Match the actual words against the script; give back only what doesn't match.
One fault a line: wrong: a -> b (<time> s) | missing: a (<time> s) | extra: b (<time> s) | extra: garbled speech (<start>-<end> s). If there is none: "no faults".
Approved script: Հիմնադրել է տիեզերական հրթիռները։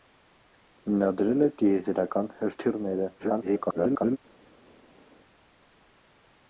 extra: garbled speech (3.2-4.2 s)